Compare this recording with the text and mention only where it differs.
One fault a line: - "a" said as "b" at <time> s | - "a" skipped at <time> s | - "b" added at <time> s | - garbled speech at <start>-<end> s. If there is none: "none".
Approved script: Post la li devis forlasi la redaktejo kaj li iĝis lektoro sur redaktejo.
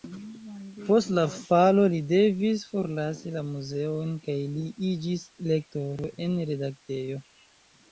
- "falo" added at 1.3 s
- "redaktejo" said as "muzeon" at 3.5 s
- "sur" said as "en" at 6.3 s